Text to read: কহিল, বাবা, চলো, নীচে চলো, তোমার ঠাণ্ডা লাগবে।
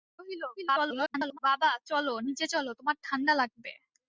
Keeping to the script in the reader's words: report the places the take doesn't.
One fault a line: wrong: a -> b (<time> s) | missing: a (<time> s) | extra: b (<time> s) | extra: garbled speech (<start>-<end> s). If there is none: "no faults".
extra: garbled speech (0.6-1.4 s)